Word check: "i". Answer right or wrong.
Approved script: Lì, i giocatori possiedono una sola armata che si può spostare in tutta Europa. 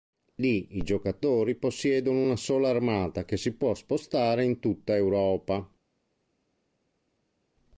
right